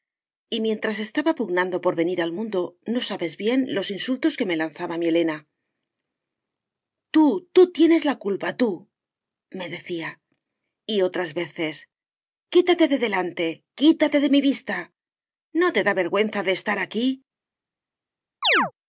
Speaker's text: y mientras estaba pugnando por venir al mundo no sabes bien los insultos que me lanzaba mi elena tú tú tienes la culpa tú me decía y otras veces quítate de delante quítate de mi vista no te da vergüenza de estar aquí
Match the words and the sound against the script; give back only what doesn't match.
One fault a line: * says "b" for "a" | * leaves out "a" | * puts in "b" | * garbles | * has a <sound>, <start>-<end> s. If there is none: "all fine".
* has a chirp, 18.4-18.7 s